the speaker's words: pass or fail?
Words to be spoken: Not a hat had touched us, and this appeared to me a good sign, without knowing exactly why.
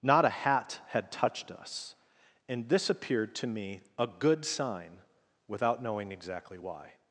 pass